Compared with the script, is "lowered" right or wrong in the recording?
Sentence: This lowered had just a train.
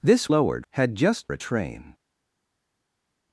right